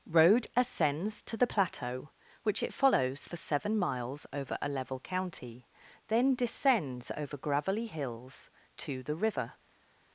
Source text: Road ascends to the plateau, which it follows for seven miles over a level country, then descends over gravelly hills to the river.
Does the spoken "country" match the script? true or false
false